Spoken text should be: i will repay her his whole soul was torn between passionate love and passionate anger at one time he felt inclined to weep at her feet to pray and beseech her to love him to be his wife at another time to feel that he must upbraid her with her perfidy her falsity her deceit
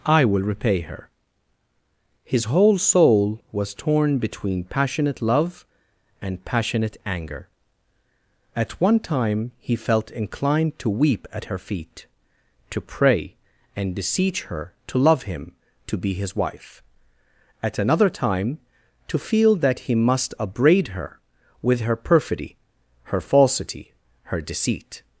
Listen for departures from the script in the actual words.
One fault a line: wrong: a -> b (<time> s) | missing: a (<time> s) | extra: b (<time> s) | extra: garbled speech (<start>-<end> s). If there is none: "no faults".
no faults